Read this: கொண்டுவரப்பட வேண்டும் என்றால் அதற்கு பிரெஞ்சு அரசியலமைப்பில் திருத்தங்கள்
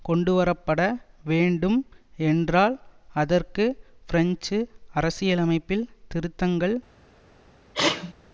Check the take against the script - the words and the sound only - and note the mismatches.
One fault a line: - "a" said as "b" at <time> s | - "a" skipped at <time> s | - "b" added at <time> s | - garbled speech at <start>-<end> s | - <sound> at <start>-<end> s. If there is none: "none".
- sneeze at 7.7-8.1 s